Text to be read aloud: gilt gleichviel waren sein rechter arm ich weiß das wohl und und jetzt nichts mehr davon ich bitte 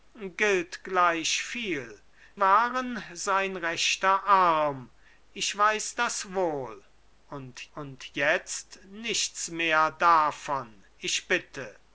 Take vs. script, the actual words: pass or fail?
pass